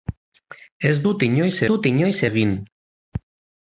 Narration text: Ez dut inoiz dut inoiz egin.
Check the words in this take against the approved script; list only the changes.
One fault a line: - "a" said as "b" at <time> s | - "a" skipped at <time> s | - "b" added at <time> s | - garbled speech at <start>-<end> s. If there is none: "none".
none